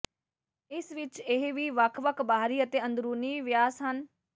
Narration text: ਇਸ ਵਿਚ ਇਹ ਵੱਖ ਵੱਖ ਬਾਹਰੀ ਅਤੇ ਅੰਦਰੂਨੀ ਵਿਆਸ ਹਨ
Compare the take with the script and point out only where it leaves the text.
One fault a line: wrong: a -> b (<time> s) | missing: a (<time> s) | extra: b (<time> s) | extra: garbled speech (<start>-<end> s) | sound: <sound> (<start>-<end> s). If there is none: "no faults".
extra: ਵੀ (1.5 s)